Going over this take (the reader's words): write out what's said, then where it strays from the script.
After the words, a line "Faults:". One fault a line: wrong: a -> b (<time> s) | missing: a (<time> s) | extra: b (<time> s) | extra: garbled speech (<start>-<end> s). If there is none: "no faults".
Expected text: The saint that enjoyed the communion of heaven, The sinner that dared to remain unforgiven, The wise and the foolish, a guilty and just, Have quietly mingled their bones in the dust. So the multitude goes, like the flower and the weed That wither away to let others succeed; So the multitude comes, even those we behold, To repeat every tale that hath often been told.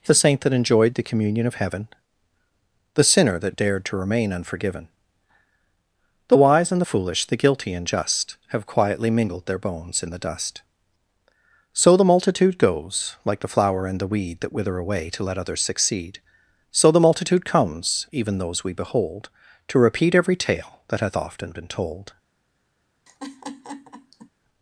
The saint that enjoyed the communion of heaven, The sinner that dared to remain unforgiven, The wise and the foolish, the guilty and just, Have quietly mingled their bones in the dust. So the multitude goes, like the flower and the weed That wither away to let others succeed; So the multitude comes, even those we behold, To repeat every tale that hath often been told.
Faults:
wrong: a -> the (7.2 s)